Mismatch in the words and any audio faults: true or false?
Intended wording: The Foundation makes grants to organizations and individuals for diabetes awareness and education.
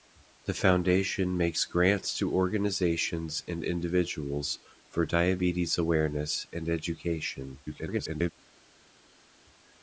true